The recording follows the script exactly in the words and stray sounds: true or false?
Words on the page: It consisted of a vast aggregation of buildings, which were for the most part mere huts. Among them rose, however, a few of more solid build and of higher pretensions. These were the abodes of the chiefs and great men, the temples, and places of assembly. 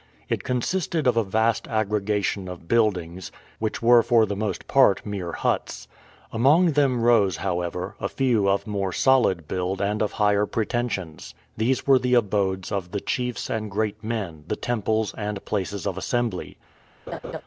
false